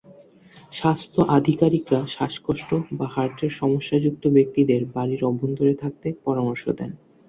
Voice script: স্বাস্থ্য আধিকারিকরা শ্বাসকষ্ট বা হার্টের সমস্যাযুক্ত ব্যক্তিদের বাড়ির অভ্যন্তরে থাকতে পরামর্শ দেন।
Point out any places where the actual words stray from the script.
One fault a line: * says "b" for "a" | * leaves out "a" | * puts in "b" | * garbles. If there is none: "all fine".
all fine